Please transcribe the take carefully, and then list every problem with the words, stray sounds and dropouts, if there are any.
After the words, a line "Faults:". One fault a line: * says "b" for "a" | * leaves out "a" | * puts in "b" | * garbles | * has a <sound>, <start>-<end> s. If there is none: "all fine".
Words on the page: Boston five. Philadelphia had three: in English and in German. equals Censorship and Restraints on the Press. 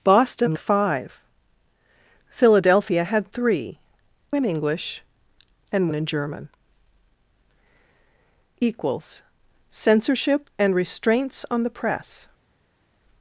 Boston five. Philadelphia had three: in English and in German. equals Censorship and Restraints on the Press.
Faults:
all fine